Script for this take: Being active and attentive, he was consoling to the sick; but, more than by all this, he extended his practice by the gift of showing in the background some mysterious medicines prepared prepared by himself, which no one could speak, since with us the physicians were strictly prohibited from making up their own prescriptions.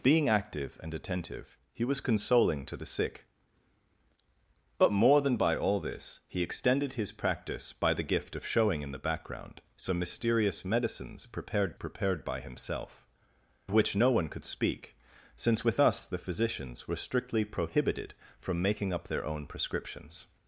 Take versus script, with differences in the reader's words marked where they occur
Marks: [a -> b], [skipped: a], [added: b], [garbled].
Being active and attentive, he was consoling to the sick; but, more than by all this, he extended his practice by the gift of showing in the background some mysterious medicines prepared prepared by himself, which no one could speak, since with us the physicians were strictly prohibited from making up their own prescriptions.